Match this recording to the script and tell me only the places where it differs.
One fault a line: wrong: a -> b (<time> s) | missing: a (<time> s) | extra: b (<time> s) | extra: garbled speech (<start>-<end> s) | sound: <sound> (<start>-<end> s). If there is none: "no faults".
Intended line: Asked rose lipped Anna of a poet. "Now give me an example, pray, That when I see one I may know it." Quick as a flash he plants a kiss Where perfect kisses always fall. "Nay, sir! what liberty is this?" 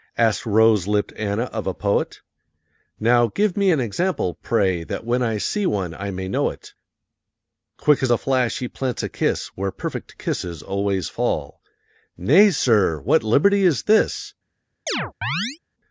sound: chirp (14.9-15.6 s)